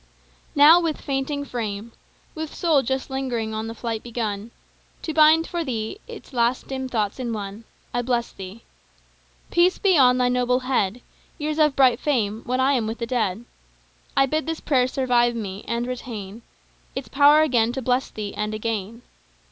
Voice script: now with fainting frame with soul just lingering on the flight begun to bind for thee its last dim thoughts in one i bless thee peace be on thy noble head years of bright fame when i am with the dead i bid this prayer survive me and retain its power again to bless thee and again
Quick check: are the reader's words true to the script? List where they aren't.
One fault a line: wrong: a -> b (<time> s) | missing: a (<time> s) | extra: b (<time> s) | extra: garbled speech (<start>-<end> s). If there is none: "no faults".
no faults